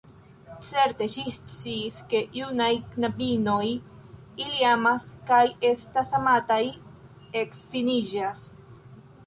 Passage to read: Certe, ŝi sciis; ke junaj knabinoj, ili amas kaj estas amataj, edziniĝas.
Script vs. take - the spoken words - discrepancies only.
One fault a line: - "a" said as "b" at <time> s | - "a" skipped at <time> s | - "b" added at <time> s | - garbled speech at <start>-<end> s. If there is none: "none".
none